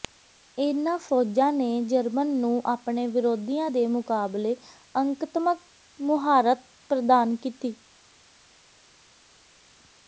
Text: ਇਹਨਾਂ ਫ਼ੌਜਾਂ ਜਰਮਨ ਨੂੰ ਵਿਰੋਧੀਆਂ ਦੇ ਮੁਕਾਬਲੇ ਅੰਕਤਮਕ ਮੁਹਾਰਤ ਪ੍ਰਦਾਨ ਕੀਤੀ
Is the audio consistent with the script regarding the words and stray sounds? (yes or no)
no